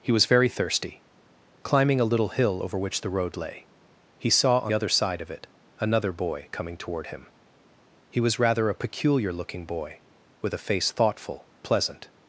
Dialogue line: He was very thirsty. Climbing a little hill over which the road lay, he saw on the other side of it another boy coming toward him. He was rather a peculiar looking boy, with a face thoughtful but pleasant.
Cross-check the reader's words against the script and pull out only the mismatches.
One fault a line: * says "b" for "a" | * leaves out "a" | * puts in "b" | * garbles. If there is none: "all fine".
* leaves out "the"
* leaves out "but"